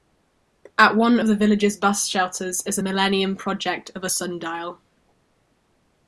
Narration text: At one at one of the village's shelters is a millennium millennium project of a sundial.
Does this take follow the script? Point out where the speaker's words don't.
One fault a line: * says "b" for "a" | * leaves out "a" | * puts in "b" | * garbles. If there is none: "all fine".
* leaves out "at one"
* puts in "bus"
* leaves out "millennium"